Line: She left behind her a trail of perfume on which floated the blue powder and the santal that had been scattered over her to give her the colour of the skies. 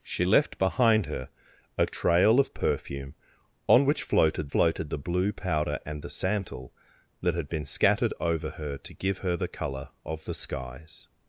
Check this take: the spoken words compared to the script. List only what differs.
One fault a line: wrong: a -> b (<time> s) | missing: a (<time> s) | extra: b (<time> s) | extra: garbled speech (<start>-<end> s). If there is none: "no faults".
extra: floated (4.5 s)